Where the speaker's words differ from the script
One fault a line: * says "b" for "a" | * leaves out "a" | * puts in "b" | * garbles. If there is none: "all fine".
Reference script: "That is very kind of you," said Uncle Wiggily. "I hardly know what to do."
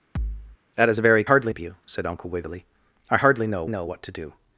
* says "hardly" for "kind"
* puts in "know"